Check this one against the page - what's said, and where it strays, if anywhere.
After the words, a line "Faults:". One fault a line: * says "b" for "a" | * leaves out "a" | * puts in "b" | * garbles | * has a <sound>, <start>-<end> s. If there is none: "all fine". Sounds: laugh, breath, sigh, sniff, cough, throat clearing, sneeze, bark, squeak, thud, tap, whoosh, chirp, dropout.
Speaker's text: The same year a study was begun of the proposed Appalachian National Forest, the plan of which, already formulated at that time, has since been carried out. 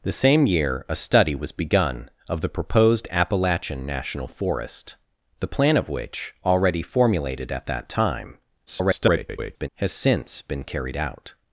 The same year a study was begun of the proposed Appalachian National Forest, the plan of which, already formulated at that time, [garbled] has since been carried out.
Faults:
* garbles